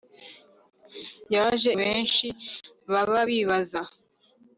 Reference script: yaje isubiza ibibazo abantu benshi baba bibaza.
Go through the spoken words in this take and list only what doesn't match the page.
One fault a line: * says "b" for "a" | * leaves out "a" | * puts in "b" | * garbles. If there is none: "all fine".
* leaves out "isubiza ibibazo abantu"